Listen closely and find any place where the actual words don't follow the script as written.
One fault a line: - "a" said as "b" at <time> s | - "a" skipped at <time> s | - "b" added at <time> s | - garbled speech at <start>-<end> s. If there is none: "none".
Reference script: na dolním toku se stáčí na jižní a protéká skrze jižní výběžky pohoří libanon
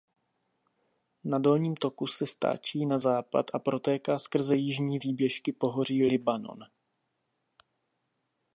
- "jižní" said as "západ" at 3.0 s